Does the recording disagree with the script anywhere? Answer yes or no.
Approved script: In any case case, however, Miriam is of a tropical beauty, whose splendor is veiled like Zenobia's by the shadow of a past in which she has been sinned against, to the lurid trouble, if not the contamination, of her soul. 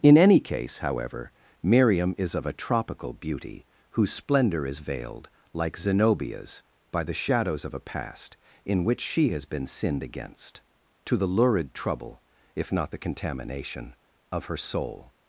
yes